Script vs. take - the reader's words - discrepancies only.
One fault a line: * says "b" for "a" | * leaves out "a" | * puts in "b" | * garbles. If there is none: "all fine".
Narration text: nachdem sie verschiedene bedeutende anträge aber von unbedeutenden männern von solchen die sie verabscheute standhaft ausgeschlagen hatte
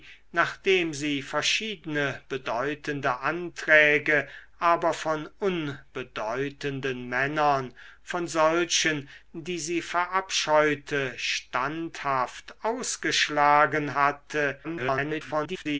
* garbles